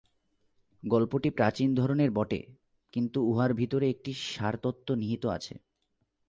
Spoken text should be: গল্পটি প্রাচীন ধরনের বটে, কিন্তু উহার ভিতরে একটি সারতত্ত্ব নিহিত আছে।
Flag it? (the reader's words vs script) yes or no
no